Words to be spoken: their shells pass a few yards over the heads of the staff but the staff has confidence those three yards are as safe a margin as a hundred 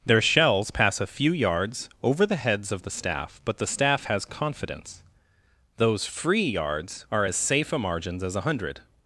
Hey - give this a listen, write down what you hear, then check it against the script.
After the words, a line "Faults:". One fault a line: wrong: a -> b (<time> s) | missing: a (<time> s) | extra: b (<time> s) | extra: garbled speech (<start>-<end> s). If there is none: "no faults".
their shells pass a few yards over the heads of the staff but the staff has confidence those free yards are as safe a margins as a hundred
Faults:
wrong: three -> free (6.0 s)
wrong: margin -> margins (7.8 s)